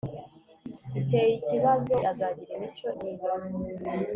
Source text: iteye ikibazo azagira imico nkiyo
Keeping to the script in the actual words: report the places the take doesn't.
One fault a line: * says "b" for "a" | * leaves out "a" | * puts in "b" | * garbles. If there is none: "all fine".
all fine